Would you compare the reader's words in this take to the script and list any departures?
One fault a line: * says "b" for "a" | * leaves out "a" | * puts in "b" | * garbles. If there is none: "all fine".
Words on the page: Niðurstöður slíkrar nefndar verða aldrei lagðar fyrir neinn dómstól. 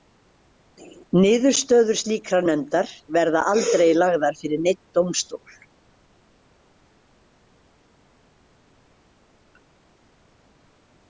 all fine